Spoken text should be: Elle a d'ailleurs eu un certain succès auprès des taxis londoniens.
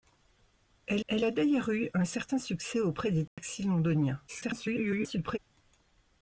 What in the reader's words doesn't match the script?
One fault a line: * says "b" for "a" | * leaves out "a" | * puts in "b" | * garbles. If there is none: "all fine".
* puts in "elle"
* garbles